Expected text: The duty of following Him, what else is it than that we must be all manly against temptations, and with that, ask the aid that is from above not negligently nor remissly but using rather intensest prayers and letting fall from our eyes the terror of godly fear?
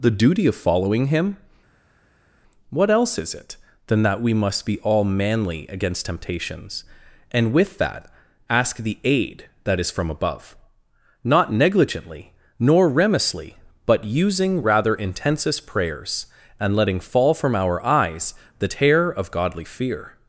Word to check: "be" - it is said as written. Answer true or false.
true